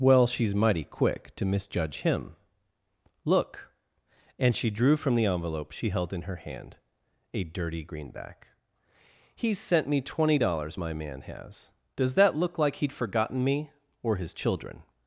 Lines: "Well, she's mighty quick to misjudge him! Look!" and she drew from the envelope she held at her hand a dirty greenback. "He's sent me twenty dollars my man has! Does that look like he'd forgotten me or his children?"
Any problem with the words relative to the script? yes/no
yes